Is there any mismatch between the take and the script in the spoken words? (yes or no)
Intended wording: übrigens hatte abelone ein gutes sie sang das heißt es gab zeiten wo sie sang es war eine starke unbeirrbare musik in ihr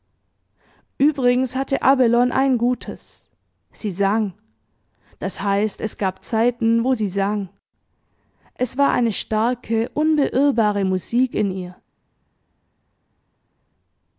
no